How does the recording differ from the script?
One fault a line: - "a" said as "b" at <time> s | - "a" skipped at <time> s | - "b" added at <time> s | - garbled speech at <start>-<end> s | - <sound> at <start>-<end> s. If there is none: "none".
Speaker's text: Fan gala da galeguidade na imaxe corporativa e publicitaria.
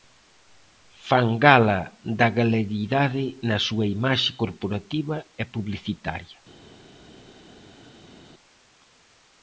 - "súa" added at 3.7 s